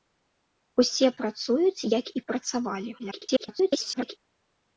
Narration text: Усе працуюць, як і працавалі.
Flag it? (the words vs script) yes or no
yes